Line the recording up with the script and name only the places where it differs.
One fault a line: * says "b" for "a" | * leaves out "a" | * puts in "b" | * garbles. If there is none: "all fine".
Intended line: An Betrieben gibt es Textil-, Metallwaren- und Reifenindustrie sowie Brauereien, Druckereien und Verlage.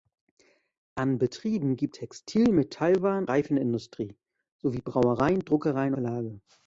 * leaves out "es"
* leaves out "und"
* leaves out "und"